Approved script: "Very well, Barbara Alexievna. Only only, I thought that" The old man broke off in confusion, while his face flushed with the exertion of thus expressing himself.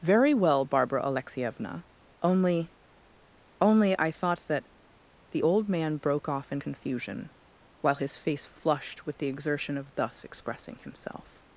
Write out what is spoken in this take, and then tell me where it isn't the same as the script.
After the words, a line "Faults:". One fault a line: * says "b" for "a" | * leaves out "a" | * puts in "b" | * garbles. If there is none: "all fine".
"Very well, Barbara Alexievna. Only only, I thought that" The old man broke off in confusion, while his face flushed with the exertion of thus expressing himself.
Faults:
all fine